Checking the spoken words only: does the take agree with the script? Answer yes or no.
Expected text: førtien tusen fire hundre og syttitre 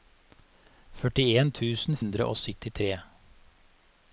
no